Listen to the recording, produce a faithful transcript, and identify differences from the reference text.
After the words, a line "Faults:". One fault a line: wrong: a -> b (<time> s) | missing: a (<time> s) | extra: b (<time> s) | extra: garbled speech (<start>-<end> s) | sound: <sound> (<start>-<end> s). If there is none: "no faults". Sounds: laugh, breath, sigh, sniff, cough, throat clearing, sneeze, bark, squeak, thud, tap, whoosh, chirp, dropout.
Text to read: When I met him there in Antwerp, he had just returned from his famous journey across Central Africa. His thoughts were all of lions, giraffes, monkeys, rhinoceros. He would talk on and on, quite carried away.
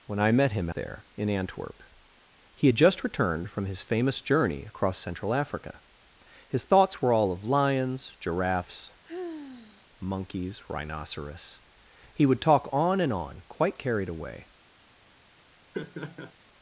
When I met him there in Antwerp, he had just returned from his famous journey across Central Africa. His thoughts were all of lions, giraffes, monkeys, rhinoceros. He would talk on and on, quite carried away.
Faults:
sound: sigh (9.0-9.9 s)
sound: laugh (15.7-16.3 s)